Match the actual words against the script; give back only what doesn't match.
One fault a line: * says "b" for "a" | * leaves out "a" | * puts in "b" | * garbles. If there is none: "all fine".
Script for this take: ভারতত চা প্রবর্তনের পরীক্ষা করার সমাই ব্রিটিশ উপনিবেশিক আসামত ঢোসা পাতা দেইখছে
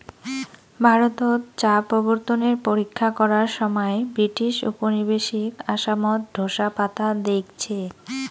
all fine